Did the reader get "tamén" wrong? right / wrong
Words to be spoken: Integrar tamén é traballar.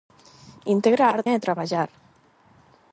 wrong